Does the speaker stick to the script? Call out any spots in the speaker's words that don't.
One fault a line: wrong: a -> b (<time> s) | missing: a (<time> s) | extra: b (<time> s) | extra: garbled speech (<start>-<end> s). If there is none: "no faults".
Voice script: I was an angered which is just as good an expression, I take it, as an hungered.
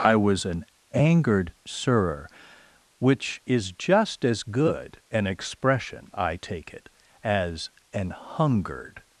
extra: surer (1.6 s)